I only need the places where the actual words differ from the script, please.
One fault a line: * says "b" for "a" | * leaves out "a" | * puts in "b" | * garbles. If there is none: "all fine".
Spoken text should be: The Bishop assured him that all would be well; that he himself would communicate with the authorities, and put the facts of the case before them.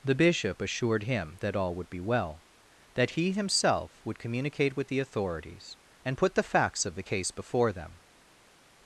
all fine